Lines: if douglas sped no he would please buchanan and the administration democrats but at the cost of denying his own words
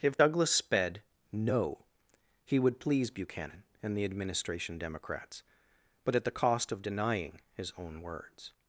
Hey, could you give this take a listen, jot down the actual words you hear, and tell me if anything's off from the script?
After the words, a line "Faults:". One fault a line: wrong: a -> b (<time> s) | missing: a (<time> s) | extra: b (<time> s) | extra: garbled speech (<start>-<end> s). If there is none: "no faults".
if douglas sped no he would please buchanan and the administration democrats but at the cost of denying his own words
Faults:
no faults